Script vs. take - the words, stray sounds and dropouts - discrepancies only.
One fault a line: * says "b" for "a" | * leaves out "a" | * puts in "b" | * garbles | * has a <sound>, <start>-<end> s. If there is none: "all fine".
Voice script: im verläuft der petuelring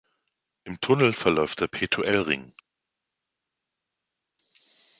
* puts in "tunnel"